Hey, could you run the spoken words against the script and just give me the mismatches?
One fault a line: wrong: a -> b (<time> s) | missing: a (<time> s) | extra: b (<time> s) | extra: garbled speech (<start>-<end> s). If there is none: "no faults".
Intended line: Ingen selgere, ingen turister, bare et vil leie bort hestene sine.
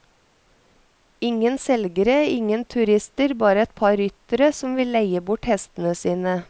extra: par ryttere som (3.8 s)